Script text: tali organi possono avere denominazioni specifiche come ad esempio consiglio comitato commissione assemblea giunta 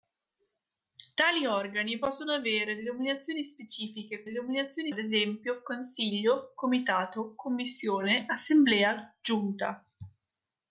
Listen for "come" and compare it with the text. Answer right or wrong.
wrong